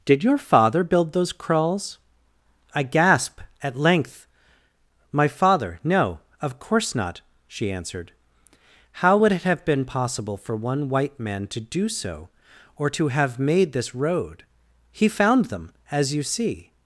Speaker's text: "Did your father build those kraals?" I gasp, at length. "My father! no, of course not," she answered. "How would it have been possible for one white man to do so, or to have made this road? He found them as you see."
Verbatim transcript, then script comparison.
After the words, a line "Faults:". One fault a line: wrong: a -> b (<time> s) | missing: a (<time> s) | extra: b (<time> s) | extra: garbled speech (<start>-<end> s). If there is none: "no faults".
"Did your father build those kraals?" I gasp, at length. "My father! no, of course not," she answered. "How would it have been possible for one white man to do so, or to have made this road? He found them as you see."
Faults:
no faults